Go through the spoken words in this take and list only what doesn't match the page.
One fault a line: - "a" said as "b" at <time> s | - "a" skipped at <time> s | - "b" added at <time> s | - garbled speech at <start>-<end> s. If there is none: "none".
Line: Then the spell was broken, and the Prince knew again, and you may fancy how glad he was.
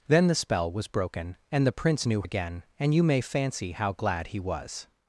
none